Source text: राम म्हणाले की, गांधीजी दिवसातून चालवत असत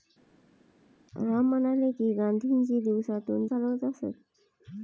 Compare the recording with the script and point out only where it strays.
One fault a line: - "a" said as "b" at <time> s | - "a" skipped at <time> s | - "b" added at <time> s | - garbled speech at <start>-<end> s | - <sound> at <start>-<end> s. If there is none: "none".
none